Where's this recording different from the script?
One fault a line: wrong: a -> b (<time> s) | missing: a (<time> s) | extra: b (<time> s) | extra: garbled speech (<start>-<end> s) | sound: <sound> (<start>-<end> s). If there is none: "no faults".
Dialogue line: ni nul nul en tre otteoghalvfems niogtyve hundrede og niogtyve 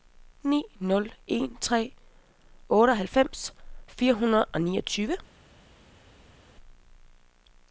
missing: nul (1.1 s)
wrong: niogtyve -> fire (3.9 s)